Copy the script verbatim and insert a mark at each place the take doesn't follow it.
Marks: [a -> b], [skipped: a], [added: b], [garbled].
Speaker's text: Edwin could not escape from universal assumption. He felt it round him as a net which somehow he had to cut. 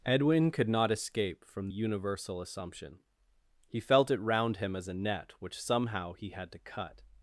Edwin could not escape from universal assumption. He felt it round him as a net which somehow he had to cut.